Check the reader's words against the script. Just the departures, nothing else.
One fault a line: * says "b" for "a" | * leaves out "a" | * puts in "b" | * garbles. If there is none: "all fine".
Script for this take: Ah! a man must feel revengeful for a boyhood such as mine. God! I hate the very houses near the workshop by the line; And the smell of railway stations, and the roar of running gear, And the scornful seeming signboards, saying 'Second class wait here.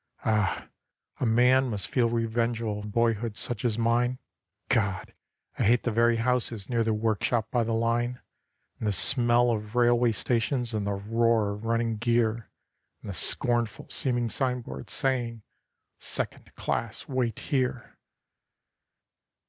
* leaves out "for"